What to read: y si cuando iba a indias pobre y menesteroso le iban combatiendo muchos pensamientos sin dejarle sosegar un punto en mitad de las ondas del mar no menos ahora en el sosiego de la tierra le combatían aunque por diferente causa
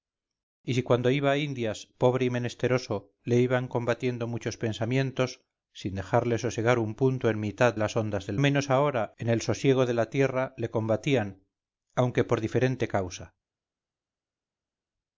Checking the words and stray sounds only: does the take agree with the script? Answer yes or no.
no